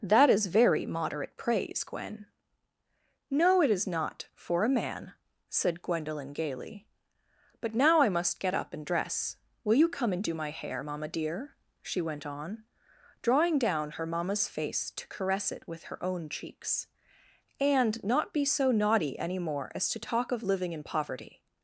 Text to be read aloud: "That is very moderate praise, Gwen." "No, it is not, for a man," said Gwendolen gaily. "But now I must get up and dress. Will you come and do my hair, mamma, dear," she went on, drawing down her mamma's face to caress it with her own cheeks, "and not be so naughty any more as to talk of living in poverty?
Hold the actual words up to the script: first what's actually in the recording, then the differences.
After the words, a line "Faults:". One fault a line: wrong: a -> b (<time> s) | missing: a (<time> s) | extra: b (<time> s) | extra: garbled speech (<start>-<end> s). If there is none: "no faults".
"That is very moderate praise, Gwen." "No, it is not, for a man," said Gwendolen gaily. "But now I must get up and dress. Will you come and do my hair, mamma, dear," she went on, drawing down her mamma's face to caress it with her own cheeks, "and not be so naughty any more as to talk of living in poverty?
Faults:
no faults